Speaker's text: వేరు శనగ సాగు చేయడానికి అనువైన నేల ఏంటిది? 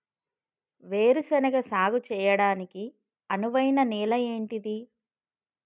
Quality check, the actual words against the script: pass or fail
pass